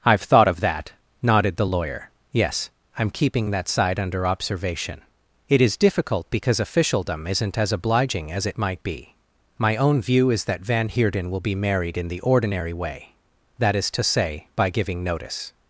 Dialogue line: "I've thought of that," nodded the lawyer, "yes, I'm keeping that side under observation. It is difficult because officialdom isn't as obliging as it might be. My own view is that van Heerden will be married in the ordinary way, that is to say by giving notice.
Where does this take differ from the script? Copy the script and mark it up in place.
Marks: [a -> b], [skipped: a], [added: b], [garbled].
"I've thought of that," nodded the lawyer, "yes, I'm keeping that side under observation. It is difficult because officialdom isn't as obliging as it might be. My own view is that van Heerden will be married in the ordinary way, that is to say by giving notice.